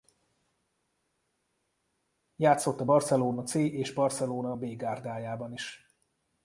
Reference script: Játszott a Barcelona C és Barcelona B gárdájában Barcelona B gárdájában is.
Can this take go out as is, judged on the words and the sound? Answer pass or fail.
fail